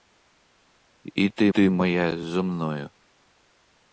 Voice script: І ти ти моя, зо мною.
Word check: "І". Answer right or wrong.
right